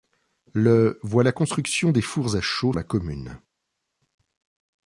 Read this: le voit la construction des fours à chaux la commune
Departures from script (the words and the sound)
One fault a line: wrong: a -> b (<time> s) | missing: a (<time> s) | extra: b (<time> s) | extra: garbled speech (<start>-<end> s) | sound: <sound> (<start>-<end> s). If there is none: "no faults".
no faults